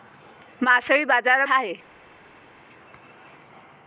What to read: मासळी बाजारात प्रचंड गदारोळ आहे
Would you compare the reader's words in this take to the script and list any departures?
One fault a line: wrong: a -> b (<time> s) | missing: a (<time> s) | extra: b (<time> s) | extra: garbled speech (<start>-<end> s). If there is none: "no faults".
missing: प्रचंड गदारोळ (1.5 s)